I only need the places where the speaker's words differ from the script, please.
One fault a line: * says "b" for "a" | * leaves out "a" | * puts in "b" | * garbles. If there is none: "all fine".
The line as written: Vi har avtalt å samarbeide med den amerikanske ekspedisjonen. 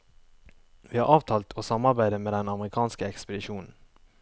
all fine